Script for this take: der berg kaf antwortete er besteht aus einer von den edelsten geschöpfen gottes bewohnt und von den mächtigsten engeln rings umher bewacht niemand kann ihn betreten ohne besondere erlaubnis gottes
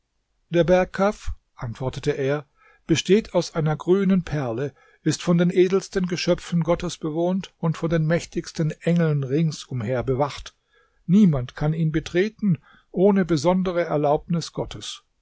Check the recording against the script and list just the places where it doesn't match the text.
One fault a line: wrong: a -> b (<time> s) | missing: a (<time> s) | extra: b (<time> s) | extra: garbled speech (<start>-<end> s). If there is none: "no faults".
extra: grünen perle ist (3.7 s)